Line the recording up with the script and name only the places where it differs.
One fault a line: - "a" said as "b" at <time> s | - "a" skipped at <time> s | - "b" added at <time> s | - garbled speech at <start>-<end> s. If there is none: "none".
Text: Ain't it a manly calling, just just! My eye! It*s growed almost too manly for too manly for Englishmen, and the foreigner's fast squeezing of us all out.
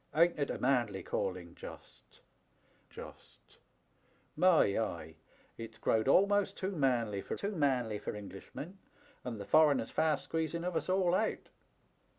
none